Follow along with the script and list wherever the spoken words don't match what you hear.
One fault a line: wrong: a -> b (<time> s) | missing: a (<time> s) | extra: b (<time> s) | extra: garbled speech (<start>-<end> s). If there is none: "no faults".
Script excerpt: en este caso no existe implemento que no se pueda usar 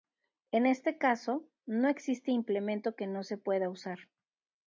no faults